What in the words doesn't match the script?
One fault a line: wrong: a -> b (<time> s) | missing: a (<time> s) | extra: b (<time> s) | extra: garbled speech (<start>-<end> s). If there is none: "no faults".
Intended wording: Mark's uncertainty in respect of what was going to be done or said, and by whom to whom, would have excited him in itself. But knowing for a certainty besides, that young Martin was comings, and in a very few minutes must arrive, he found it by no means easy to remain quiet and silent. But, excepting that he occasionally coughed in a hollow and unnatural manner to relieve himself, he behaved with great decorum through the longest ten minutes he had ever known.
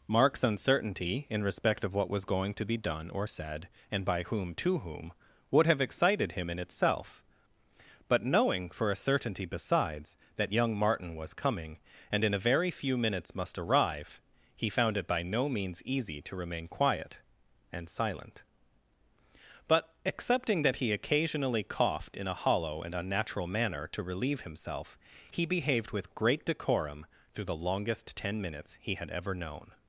wrong: comings -> coming (11.3 s)